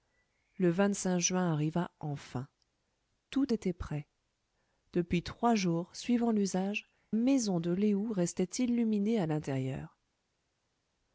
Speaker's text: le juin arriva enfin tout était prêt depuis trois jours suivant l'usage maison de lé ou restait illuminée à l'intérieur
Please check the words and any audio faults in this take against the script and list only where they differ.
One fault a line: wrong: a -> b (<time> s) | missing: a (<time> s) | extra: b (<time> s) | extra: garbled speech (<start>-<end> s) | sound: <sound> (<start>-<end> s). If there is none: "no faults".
no faults